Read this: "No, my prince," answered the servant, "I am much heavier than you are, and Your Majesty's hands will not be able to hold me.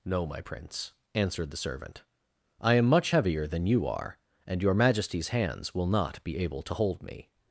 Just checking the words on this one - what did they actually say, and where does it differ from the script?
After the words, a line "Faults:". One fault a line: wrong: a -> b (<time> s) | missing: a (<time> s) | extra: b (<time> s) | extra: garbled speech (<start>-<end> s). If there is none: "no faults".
"No, my prince," answered the servant, "I am much heavier than you are, and Your Majesty's hands will not be able to hold me.
Faults:
no faults